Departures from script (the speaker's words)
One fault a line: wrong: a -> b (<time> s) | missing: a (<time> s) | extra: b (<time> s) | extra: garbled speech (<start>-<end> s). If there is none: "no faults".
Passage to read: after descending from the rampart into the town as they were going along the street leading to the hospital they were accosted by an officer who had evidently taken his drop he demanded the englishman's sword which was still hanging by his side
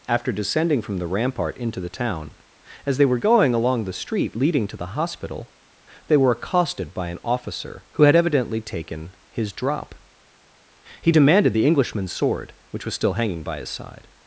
no faults